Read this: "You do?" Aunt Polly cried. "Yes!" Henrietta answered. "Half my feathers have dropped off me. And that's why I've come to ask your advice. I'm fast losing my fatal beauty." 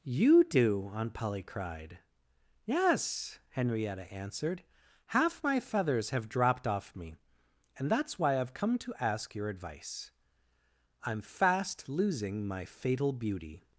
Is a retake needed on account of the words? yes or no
no